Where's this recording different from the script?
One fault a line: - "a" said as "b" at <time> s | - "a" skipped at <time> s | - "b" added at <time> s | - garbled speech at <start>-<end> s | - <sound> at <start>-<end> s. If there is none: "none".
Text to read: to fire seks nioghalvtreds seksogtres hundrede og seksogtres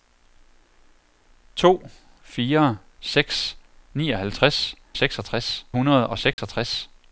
- dropout at 6.3-6.4 s